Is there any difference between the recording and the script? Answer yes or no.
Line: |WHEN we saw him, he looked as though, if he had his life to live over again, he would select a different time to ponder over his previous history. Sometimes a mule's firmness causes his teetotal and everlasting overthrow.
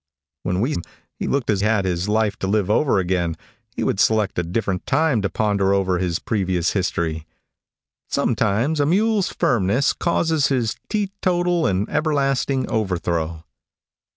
yes